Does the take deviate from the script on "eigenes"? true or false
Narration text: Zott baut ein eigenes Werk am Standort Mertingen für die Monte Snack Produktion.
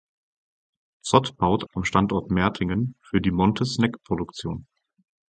true